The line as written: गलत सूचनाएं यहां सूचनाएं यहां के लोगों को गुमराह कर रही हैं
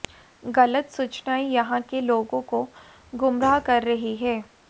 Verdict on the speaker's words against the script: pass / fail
fail